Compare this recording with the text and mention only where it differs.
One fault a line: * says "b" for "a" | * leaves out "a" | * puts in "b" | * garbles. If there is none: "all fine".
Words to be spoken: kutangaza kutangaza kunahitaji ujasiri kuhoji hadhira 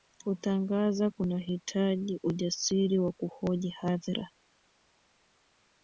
* leaves out "kutangaza"
* puts in "wa"